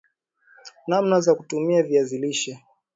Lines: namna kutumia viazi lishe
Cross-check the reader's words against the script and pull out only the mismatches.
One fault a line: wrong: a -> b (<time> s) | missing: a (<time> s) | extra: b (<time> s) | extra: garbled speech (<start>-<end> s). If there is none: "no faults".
extra: za (1.2 s)